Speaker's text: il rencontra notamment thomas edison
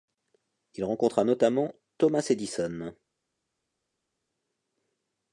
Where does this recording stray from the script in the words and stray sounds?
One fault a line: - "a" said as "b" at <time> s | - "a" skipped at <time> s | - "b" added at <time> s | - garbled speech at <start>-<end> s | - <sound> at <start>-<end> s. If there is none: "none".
none